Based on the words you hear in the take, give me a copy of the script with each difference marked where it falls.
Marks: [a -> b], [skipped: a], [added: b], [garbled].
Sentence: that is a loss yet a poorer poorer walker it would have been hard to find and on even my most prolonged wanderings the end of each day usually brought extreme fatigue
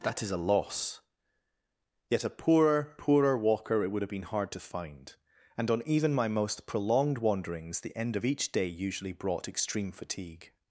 that is a loss yet a poorer poorer walker it would have been hard to find and on even my most prolonged wanderings the end of each day usually brought extreme fatigue